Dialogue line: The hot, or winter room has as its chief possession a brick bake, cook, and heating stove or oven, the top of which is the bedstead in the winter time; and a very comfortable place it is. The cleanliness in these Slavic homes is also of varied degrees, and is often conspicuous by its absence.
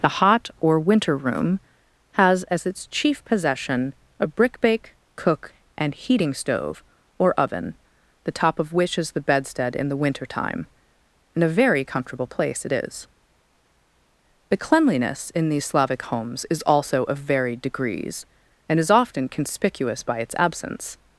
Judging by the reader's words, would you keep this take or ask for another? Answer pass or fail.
pass